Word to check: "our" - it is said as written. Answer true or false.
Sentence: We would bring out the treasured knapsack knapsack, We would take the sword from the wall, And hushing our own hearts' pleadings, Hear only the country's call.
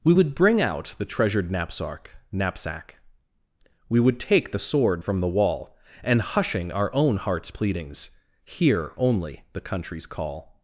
true